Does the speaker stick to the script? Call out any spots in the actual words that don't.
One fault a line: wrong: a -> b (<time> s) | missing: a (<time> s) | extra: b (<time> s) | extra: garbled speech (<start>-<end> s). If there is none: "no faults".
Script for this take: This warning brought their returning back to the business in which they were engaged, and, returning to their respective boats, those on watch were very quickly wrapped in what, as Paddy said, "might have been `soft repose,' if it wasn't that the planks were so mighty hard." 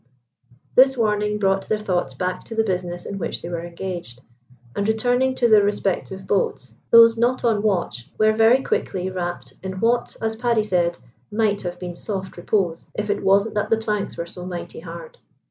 wrong: returning -> thoughts (1.8 s)
extra: not (7.2 s)